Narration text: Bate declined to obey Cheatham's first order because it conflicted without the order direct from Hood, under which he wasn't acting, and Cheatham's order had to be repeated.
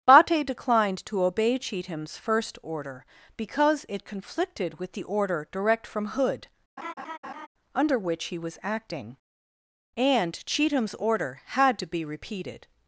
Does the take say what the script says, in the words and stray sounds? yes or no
no